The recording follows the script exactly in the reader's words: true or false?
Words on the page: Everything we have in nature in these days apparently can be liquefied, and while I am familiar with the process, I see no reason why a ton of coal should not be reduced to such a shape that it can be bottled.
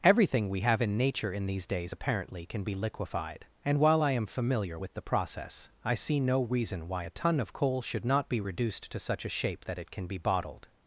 true